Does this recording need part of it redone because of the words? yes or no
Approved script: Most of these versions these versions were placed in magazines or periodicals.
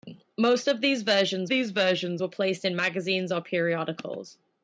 no